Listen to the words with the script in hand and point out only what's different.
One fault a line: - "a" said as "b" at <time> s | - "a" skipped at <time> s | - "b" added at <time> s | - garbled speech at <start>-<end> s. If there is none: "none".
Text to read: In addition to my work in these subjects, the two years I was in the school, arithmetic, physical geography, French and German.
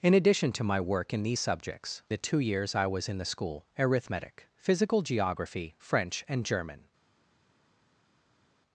none